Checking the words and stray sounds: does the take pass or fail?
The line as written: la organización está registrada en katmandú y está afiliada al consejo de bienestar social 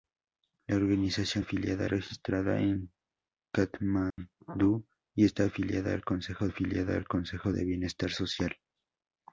fail